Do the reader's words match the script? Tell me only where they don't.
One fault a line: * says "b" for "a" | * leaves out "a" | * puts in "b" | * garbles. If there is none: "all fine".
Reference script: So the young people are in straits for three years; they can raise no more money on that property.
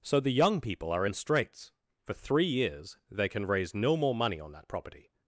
all fine